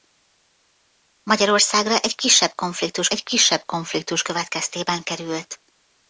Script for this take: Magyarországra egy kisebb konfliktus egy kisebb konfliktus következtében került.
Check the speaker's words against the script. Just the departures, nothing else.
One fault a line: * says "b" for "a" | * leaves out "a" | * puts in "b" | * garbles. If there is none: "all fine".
all fine